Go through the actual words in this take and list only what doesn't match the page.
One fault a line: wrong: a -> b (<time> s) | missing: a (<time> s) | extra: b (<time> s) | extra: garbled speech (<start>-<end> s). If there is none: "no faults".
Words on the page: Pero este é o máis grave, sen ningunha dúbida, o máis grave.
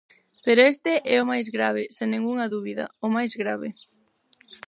no faults